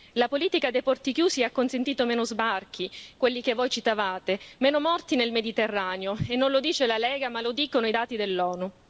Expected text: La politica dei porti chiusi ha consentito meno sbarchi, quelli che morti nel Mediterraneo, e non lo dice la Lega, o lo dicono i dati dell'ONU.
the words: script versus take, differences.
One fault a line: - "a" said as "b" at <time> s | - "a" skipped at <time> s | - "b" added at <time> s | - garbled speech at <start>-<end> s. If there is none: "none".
- "voi citavate meno" added at 3.5 s
- "o" said as "ma" at 7.3 s